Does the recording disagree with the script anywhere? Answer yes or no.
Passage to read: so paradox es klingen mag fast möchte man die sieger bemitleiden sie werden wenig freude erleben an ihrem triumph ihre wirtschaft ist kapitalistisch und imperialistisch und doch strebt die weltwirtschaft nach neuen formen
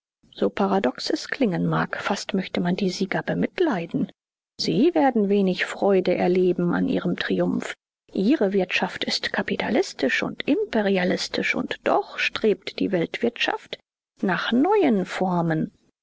no